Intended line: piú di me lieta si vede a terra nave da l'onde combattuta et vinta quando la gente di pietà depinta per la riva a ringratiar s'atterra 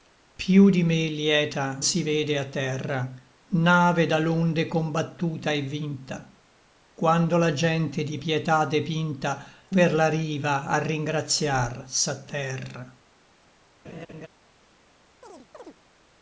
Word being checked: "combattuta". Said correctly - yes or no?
yes